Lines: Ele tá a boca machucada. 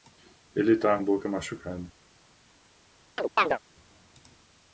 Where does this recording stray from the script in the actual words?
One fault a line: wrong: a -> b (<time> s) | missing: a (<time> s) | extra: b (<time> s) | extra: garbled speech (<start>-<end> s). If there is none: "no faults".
no faults